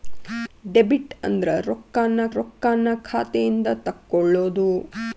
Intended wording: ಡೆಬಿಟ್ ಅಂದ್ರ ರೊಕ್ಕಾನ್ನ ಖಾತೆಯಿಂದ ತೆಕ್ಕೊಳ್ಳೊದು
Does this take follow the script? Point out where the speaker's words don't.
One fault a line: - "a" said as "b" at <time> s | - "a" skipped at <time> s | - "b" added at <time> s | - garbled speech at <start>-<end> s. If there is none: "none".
- "ರೊಕ್ಕಾನ್ನ" added at 2.4 s